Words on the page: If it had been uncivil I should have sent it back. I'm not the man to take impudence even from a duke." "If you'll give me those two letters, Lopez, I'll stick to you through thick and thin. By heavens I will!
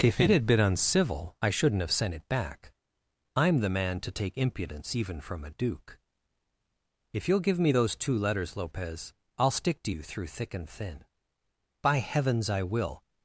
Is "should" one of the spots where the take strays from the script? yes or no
yes